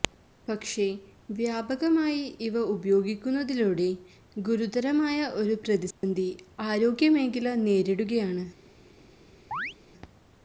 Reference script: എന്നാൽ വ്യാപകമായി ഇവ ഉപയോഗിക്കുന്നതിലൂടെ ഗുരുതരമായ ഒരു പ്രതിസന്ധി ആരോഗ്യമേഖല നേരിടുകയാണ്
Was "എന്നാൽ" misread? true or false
true